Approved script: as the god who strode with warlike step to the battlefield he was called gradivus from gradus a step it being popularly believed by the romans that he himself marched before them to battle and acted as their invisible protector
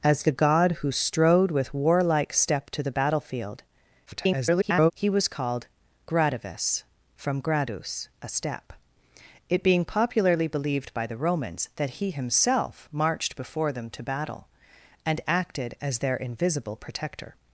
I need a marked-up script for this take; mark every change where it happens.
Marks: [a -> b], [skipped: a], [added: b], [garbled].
as the god who strode with warlike step to the battlefield [garbled] he was called gradivus from gradus a step it being popularly believed by the romans that he himself marched before them to battle and acted as their invisible protector